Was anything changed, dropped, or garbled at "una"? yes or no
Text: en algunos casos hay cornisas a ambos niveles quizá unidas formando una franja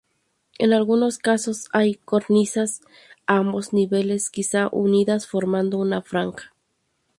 no